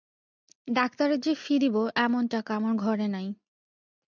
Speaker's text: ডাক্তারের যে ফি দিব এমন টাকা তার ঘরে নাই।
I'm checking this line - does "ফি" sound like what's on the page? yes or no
yes